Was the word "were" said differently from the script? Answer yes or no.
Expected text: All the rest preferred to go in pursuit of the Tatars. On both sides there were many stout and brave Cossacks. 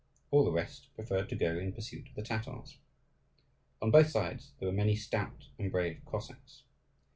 no